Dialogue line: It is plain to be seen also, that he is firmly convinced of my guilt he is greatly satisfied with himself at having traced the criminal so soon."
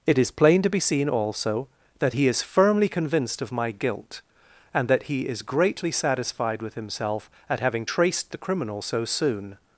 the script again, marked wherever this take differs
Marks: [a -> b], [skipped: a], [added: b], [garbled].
It is plain to be seen also, that he is firmly convinced of my guilt [added: and that] he is greatly satisfied with himself at having traced the criminal so soon."